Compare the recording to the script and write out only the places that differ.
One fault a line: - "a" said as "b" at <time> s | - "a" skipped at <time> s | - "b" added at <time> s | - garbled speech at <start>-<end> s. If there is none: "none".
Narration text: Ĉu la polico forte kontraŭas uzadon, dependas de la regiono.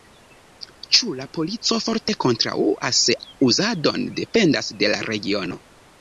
none